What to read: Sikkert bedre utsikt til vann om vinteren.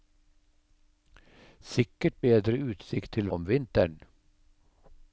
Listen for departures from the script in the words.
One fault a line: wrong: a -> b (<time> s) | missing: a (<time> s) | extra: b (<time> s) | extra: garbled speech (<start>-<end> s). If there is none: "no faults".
missing: vann (3.3 s)